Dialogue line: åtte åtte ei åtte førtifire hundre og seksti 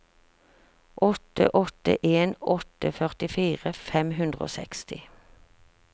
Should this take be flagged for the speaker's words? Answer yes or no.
yes